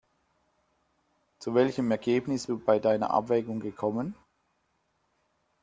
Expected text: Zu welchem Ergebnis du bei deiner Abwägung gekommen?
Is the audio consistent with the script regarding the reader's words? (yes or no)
yes